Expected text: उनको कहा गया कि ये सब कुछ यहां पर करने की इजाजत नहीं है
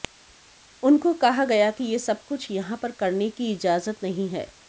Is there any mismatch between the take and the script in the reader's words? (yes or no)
no